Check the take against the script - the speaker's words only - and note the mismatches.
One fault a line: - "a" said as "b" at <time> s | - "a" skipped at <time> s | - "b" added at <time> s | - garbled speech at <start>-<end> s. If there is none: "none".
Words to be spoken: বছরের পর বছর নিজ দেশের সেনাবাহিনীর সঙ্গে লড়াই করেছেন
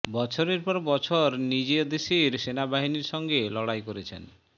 none